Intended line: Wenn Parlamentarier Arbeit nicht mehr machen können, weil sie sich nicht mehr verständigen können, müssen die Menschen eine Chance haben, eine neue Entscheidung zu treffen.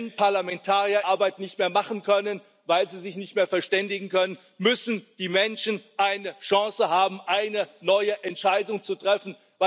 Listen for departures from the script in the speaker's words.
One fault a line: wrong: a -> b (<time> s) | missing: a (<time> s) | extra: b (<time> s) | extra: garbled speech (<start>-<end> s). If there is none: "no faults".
no faults